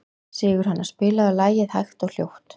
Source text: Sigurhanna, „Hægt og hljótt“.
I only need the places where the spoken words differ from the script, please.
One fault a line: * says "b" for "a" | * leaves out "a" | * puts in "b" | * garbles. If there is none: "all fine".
* puts in "spilaðu lagið"